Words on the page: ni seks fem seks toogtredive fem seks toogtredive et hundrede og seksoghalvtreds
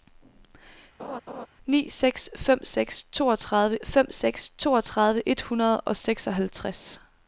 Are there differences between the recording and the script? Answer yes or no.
no